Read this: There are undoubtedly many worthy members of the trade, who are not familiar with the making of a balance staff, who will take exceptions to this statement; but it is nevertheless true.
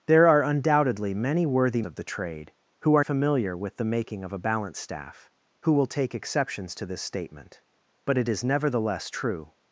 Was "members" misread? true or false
true